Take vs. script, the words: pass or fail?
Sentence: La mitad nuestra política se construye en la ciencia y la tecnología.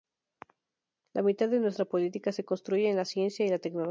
fail